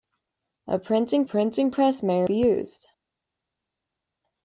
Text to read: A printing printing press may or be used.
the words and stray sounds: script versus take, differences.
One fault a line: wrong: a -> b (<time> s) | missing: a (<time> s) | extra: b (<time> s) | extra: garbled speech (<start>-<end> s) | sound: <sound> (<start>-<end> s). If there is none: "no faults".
no faults